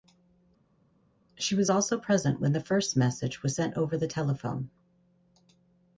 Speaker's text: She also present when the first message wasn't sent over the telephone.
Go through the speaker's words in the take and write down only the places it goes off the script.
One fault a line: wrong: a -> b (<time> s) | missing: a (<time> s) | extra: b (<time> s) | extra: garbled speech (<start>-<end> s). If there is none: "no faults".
extra: was (1.6 s)
wrong: wasn't -> was (3.4 s)